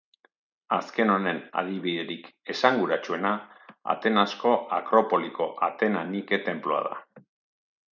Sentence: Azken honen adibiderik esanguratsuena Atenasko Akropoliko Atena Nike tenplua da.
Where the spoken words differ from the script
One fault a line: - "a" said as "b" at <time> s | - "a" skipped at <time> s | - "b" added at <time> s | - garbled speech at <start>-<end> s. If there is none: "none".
none